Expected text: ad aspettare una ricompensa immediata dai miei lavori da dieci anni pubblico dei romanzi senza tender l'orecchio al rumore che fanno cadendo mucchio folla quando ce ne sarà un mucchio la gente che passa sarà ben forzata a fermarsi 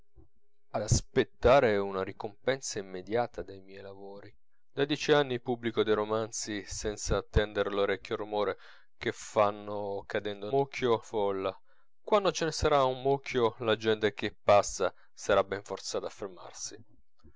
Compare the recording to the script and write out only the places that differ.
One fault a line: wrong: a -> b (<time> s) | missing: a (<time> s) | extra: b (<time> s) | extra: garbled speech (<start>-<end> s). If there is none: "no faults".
no faults